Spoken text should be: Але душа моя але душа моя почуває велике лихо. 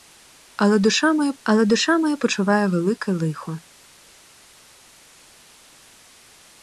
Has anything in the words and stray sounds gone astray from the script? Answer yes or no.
no